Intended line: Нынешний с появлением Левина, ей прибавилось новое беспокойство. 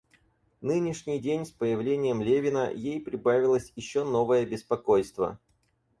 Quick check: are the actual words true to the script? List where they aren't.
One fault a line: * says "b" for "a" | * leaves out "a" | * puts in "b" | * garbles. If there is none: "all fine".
* puts in "день"
* puts in "еще"